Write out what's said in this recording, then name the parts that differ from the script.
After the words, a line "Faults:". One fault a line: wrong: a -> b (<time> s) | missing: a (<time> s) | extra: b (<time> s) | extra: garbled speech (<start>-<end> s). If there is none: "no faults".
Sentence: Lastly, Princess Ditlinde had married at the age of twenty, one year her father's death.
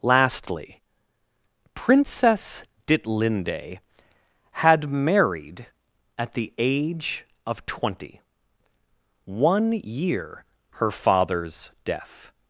Lastly, Princess Ditlinde had married at the age of twenty, one year her father's death.
Faults:
no faults